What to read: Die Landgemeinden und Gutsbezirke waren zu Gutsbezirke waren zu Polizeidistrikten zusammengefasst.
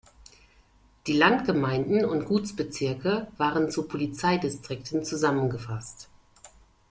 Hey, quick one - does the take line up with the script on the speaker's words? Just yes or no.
no